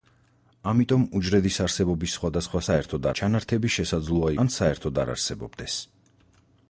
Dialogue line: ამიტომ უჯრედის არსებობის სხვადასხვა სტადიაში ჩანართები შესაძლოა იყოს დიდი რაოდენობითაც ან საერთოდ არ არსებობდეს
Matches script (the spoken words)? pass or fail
fail